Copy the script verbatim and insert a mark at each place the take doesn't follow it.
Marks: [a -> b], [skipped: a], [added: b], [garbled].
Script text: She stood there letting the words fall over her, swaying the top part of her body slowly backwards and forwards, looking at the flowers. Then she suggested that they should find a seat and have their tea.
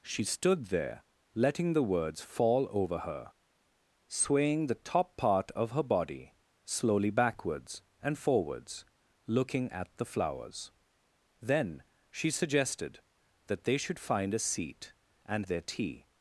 She stood there letting the words fall over her, swaying the top part of her body slowly backwards and forwards, looking at the flowers. Then she suggested that they should find a seat and [skipped: have] their tea.